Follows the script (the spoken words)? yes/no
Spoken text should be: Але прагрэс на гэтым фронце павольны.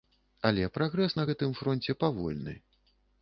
yes